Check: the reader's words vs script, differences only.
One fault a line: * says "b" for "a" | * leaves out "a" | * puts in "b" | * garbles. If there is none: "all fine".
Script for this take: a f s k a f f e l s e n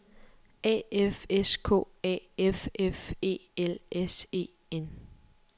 all fine